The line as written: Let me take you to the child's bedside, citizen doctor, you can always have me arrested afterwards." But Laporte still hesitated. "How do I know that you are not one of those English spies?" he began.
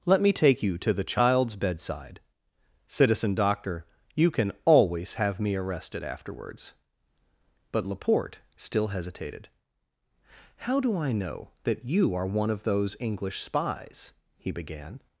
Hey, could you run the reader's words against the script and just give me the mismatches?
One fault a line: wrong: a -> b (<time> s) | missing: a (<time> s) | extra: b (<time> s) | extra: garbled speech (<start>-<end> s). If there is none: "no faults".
missing: not (12.2 s)